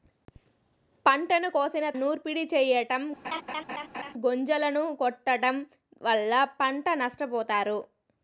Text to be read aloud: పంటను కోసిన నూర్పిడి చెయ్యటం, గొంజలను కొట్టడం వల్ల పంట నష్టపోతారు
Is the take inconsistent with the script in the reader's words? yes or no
no